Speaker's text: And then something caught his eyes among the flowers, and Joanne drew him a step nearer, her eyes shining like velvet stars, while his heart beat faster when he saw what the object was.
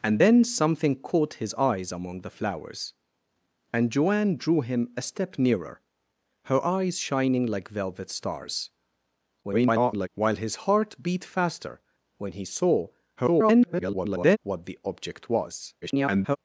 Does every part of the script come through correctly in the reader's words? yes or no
no